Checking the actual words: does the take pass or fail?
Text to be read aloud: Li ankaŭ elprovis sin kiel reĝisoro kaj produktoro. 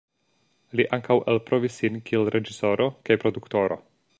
pass